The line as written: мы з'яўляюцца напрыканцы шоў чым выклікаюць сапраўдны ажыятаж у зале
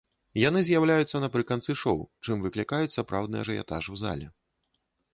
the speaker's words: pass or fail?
fail